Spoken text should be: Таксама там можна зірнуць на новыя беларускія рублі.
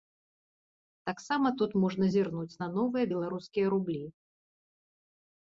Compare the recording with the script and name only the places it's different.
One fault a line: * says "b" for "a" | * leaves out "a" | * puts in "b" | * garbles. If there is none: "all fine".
* says "тут" for "там"